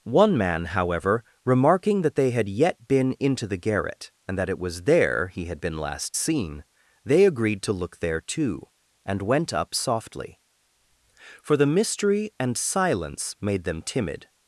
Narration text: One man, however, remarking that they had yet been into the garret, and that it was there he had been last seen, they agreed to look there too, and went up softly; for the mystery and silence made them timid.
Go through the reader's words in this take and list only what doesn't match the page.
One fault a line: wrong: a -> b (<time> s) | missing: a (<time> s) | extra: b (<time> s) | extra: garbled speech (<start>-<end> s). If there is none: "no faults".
no faults